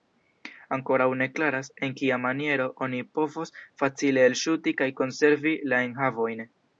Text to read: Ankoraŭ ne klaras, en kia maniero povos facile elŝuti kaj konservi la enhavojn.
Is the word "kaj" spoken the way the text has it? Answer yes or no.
yes